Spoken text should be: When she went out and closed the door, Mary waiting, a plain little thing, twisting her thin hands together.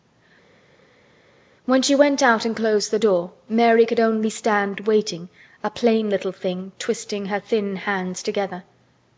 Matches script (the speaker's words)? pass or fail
fail